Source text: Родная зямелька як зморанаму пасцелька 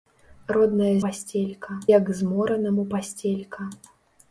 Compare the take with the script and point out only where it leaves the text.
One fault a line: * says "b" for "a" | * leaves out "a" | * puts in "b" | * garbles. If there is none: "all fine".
* says "пасцелька" for "зямелька"